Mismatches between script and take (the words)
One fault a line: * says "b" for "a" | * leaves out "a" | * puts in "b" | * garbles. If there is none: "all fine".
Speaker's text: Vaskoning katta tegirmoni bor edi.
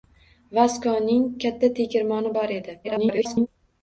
* garbles